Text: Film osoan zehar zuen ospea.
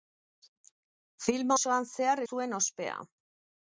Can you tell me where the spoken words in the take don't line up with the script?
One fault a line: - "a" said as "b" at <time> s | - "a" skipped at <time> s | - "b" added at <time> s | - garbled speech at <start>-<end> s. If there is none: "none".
none